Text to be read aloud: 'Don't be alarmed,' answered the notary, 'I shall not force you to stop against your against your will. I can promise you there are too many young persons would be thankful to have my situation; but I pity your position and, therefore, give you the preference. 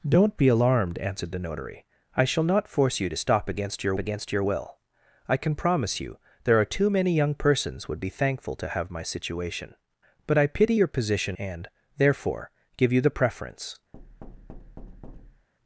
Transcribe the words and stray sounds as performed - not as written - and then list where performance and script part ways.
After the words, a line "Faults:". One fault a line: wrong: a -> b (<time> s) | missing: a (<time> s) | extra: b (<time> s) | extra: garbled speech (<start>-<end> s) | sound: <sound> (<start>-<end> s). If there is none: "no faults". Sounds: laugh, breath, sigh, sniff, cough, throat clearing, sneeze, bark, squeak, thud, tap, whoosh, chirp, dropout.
'Don't be alarmed,' answered the notary, 'I shall not force you to stop against your against your will. I can promise you there are too many young persons would be thankful to have my situation; but I pity your position and, therefore, give you the preference.
Faults:
sound: thud (13.9-15.5 s)